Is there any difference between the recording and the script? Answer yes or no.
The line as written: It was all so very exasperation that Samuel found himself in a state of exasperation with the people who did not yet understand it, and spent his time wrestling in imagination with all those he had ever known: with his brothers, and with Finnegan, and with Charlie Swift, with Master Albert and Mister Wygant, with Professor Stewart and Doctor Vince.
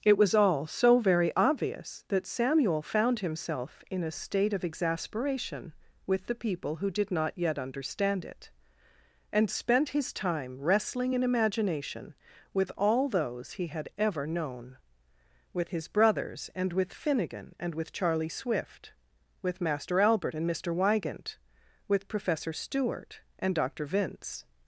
yes